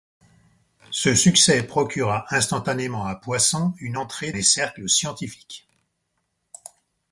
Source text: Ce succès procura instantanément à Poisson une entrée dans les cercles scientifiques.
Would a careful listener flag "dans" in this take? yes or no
yes